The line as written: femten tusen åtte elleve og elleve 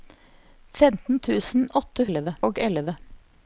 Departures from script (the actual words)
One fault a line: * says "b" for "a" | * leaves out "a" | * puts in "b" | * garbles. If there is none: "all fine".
all fine